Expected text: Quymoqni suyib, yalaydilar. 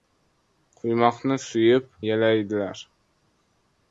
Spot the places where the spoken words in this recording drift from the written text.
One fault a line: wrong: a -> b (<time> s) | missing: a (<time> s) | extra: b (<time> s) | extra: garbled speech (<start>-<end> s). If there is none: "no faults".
no faults